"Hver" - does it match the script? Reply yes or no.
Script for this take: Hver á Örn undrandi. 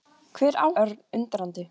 yes